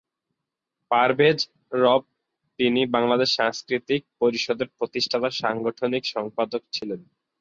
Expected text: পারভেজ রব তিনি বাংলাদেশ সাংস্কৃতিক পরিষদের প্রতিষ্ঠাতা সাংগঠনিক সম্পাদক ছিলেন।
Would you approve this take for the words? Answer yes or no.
yes